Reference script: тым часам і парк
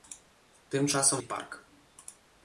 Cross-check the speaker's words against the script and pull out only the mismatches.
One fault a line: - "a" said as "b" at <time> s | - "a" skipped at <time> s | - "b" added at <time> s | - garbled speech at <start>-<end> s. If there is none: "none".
none